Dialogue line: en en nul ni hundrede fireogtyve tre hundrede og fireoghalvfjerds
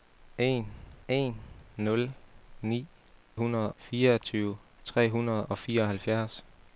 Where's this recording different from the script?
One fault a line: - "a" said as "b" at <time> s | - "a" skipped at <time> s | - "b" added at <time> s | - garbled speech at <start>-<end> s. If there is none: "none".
none